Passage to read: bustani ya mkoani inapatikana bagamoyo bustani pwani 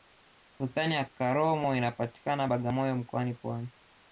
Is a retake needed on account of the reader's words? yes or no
yes